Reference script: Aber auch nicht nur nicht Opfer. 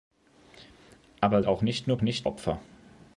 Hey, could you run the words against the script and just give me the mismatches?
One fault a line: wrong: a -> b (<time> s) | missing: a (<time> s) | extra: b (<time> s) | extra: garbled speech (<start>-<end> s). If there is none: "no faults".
no faults